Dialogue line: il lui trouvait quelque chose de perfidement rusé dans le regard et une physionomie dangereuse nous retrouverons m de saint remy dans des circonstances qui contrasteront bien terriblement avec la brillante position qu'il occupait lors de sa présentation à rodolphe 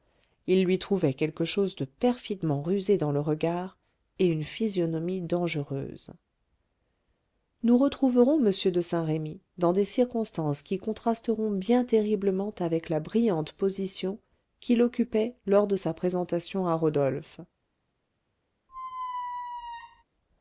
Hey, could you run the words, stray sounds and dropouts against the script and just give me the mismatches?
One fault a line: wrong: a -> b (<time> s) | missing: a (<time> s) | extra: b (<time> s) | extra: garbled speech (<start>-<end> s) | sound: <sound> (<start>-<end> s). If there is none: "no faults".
sound: squeak (18.7-20.0 s)